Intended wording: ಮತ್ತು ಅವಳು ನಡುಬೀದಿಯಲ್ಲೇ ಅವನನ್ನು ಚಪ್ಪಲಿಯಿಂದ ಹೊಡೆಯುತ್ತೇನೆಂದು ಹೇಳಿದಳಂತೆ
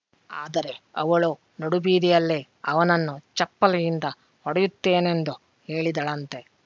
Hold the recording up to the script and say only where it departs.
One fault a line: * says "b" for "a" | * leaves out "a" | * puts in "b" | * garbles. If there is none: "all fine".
* says "ಆದರೆ" for "ಮತ್ತು"